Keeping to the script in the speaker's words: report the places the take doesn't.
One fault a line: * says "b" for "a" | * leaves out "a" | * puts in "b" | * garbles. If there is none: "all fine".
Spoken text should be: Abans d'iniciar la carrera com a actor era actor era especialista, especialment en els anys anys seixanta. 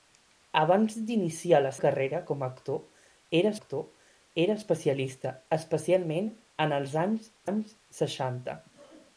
all fine